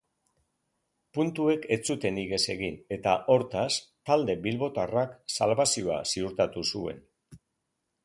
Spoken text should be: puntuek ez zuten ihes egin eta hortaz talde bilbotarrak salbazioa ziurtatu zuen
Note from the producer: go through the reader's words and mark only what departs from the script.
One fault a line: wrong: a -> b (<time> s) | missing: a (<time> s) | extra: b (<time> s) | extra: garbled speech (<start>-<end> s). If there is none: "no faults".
no faults